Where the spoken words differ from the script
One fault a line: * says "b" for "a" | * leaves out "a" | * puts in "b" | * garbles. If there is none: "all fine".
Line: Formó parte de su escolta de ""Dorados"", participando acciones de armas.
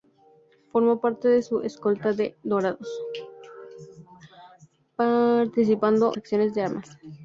all fine